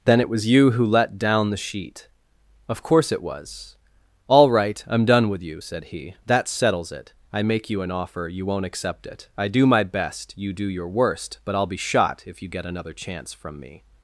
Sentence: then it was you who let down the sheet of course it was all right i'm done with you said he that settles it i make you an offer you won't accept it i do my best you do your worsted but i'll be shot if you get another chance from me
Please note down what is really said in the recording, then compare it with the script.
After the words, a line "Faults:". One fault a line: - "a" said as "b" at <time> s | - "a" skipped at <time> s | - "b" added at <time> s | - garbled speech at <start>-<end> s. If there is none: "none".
then it was you who let down the sheet of course it was all right i'm done with you said he that settles it i make you an offer you won't accept it i do my best you do your worst but i'll be shot if you get another chance from me
Faults:
- "worsted" said as "worst" at 10.9 s